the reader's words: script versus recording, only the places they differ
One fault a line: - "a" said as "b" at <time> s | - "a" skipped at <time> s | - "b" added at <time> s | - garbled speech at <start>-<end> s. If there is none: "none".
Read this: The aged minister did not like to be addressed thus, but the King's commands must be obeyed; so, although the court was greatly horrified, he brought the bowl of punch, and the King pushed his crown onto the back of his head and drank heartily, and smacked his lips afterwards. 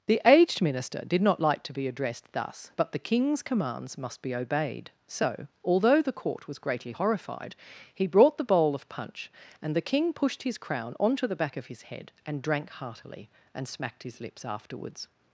none